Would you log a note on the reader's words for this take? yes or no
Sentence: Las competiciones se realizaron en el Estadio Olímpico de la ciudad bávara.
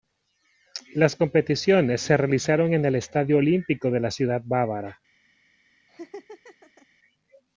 no